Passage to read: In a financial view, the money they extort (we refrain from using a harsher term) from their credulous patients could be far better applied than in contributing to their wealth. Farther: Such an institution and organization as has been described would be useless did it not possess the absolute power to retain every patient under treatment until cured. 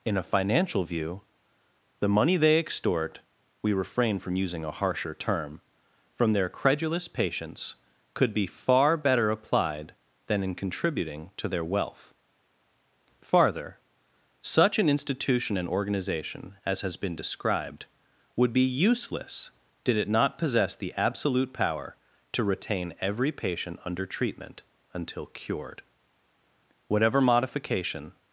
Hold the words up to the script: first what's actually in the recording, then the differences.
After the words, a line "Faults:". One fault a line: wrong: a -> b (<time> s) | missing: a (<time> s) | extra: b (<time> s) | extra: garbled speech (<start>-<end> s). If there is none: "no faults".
In a financial view, the money they extort (we refrain from using a harsher term) from their credulous patients could be far better applied than in contributing to their wealth. Farther: Such an institution and organization as has been described would be useless did it not possess the absolute power to retain every patient under treatment until cured. Whatever modification
Faults:
extra: Whatever modification (26.9 s)